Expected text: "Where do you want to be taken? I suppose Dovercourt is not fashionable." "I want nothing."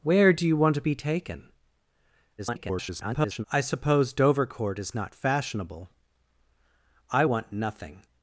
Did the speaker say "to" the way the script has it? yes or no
yes